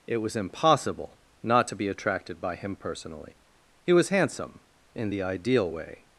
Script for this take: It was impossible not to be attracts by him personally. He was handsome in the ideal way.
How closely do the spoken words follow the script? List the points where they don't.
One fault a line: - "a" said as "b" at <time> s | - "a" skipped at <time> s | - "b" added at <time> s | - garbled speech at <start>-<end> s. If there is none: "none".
- "attracts" said as "attracted" at 1.9 s